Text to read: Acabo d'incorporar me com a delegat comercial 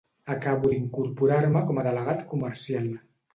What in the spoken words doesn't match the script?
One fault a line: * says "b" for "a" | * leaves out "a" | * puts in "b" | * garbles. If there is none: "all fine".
all fine